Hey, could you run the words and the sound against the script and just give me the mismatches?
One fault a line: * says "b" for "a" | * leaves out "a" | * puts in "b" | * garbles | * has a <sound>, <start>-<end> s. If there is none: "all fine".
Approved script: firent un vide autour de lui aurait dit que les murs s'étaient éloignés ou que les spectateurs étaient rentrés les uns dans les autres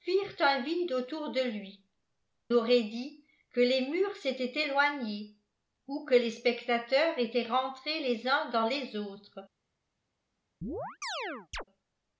* has a chirp, 10.6-11.6 s